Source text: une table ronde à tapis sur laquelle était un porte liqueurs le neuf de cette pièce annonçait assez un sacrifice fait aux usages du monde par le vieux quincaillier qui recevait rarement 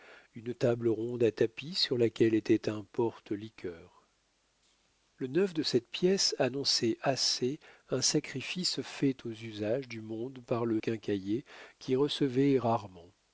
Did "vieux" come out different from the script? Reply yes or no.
yes